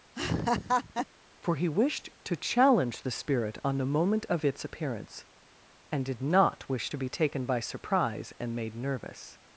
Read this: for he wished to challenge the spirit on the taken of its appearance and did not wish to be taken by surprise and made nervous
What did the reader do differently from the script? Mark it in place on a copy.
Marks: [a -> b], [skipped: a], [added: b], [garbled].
for he wished to challenge the spirit on the [taken -> moment] of its appearance and did not wish to be taken by surprise and made nervous